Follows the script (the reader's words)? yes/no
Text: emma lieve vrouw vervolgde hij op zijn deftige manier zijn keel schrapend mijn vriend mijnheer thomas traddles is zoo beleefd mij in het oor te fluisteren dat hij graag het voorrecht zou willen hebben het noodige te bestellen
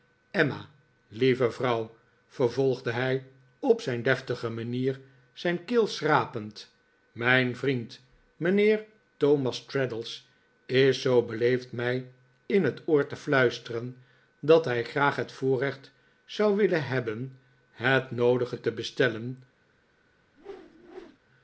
yes